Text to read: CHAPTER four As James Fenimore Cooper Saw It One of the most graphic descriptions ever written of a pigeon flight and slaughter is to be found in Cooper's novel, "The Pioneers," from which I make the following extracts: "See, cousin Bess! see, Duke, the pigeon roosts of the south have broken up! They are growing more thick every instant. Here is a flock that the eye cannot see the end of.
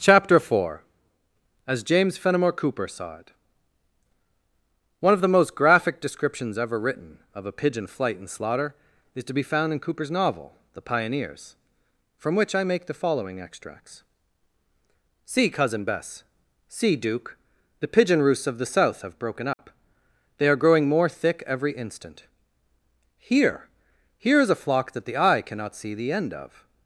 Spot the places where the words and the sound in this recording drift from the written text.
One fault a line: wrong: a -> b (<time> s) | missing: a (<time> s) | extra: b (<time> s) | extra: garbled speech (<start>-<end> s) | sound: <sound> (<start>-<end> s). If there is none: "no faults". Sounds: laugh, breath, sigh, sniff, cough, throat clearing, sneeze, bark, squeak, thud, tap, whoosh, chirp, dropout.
sound: dropout (19.5-19.6 s)
extra: Here (24.2 s)